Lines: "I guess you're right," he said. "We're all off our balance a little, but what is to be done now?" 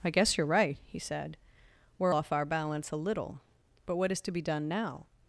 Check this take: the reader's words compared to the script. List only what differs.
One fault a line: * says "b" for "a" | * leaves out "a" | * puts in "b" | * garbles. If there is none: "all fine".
* leaves out "all"